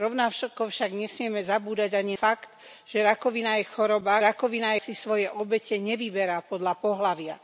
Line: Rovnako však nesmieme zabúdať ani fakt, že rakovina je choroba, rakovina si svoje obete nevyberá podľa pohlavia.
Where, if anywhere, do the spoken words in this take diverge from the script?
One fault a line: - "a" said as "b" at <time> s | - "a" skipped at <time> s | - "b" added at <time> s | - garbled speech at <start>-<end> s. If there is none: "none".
none